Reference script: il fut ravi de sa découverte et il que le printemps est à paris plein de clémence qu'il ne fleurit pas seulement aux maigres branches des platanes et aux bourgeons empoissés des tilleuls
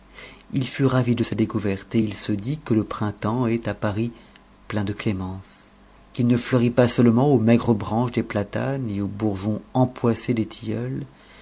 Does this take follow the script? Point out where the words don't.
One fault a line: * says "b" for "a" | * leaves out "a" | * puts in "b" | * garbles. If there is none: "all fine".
* puts in "se dit"